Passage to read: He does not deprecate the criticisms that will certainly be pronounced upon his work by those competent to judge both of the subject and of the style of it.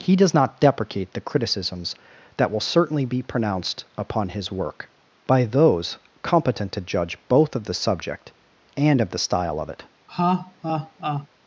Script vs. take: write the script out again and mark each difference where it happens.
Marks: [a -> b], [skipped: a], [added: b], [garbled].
He does not deprecate the criticisms that will certainly be pronounced upon his work by those competent to judge both of the subject and of the style of it.